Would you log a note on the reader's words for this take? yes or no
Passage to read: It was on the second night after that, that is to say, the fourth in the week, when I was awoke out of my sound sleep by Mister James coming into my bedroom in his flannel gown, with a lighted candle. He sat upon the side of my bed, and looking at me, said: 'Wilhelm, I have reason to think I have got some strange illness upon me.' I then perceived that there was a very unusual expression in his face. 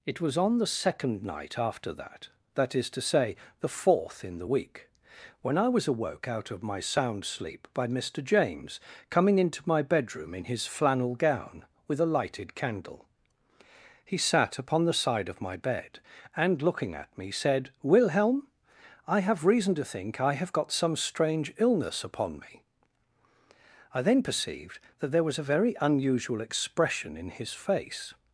no